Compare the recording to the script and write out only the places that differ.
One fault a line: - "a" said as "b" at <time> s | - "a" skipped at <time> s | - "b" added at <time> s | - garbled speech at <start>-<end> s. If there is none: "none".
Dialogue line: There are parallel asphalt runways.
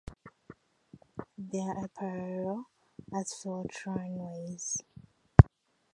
none